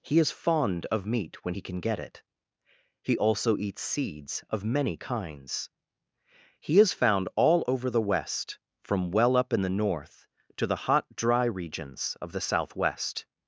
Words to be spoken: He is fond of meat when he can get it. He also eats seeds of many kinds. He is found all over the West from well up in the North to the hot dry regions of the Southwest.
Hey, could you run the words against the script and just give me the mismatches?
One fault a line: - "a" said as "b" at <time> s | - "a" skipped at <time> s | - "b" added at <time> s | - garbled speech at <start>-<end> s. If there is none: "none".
none